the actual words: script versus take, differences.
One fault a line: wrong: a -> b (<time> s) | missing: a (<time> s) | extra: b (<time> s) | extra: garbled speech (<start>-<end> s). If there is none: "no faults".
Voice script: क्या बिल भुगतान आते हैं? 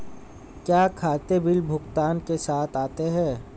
extra: खाते (0.9 s)
extra: के साथ (2.2 s)